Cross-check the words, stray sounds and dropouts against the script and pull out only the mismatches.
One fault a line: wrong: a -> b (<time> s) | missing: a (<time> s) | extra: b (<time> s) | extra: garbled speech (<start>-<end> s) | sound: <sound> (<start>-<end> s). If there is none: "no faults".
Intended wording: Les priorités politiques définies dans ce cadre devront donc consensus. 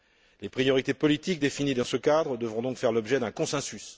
extra: faire l'objet d'un (2.8 s)